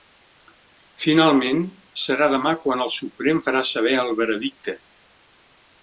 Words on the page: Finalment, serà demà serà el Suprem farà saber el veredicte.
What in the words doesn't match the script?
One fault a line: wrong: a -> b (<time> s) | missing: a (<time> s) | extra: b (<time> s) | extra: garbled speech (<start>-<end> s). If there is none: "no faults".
wrong: serà -> quan (2.6 s)